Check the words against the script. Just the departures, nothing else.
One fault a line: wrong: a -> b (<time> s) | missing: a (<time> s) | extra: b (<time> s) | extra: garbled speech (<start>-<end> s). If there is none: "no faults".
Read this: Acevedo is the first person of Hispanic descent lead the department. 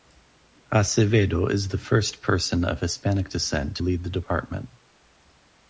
no faults